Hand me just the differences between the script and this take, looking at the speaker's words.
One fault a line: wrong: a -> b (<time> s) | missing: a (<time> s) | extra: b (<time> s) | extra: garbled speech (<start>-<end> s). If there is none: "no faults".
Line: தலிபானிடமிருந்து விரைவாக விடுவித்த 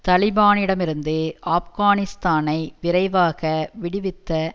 extra: ஆப்கானிஸ்தானை (1.5 s)